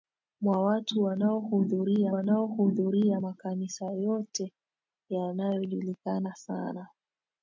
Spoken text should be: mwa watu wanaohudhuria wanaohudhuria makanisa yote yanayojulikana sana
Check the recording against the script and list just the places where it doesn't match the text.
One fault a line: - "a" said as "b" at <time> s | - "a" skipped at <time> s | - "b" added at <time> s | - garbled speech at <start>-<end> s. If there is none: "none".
none